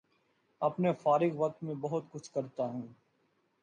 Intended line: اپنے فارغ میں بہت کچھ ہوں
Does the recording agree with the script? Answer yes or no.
no